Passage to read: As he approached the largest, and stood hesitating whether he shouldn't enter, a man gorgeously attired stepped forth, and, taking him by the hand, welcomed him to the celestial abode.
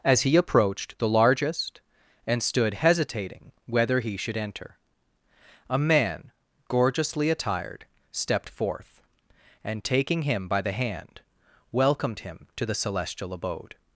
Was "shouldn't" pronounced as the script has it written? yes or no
no